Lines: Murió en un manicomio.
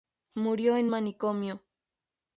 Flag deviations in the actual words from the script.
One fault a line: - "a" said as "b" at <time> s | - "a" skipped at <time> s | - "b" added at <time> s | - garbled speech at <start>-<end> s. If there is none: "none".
- "un" skipped at 0.9 s